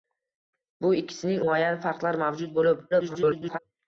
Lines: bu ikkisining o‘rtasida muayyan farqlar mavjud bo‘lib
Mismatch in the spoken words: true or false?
true